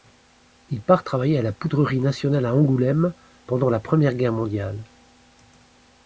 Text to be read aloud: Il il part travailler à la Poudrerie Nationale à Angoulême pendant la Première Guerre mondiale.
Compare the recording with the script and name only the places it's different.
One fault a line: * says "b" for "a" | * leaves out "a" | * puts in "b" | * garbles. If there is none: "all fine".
* leaves out "il"